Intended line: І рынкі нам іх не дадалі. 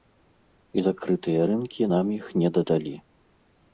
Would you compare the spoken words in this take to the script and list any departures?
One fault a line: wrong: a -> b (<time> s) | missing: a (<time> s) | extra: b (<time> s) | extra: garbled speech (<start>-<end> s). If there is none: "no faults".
extra: закрытыя (0.8 s)